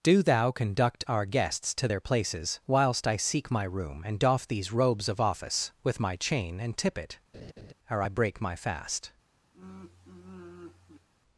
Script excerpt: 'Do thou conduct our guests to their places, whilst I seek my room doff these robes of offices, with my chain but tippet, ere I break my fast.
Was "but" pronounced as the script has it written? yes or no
no